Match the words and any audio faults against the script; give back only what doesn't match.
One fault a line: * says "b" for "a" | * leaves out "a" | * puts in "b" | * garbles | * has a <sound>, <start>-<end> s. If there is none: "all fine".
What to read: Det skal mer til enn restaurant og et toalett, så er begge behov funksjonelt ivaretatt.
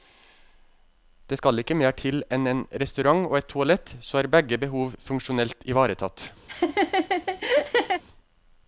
* puts in "ikke"
* puts in "en"
* has a laugh, 6.5-8.0 s